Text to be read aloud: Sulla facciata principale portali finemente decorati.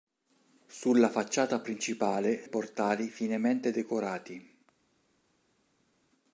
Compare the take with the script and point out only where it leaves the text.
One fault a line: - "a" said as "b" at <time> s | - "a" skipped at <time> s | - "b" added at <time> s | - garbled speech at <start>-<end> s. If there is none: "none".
none